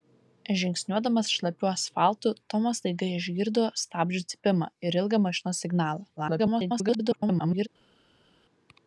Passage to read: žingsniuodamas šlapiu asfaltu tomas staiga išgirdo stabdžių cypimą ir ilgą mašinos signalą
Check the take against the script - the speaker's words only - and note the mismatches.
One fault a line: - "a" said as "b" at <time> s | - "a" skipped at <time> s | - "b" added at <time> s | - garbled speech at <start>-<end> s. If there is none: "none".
- garbled speech at 6.2-7.7 s